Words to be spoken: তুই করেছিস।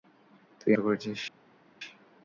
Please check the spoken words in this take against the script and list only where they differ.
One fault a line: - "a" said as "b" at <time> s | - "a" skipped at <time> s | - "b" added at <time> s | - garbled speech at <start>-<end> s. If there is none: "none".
none